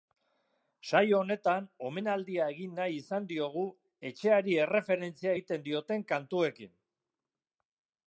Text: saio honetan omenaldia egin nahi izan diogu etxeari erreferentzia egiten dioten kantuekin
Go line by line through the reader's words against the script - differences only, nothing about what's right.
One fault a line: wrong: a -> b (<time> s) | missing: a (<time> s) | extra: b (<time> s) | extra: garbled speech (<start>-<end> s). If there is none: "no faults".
no faults